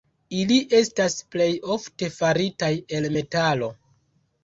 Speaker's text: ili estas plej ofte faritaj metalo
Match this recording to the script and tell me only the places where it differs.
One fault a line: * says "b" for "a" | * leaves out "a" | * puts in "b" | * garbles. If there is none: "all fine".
* puts in "el"